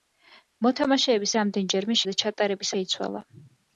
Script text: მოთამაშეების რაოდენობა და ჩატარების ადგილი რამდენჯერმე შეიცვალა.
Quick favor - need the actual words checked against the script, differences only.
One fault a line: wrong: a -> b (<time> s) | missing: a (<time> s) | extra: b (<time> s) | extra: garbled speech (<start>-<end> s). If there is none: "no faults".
wrong: რაოდენობა -> რამდენჯერმე (1.4 s)
missing: ადგილი რამდენჯერმე (2.7 s)